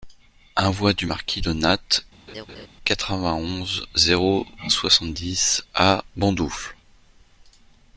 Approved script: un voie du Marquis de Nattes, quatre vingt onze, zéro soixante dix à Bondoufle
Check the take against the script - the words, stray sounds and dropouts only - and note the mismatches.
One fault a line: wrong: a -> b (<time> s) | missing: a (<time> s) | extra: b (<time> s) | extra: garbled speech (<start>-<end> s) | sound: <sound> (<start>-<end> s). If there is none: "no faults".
sound: laugh (2.3-2.7 s)